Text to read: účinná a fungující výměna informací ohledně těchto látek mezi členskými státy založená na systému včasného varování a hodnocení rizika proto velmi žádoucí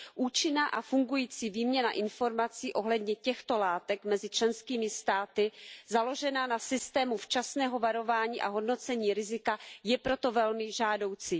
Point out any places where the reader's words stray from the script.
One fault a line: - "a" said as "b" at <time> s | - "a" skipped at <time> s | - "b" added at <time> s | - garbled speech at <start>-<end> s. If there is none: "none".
- "je" added at 9.8 s